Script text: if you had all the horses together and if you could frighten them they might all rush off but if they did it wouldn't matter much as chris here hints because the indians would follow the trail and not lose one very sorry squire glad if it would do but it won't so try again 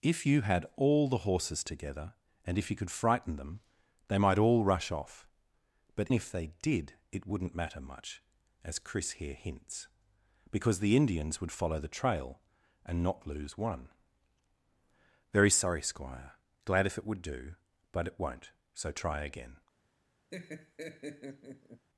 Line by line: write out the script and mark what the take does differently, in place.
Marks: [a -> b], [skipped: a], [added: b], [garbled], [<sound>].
if you had all the horses together and if you could frighten them they might all rush off but if they did it wouldn't matter much as chris here hints because the indians would follow the trail and not lose one very sorry squire glad if it would do but it won't so try again [laugh]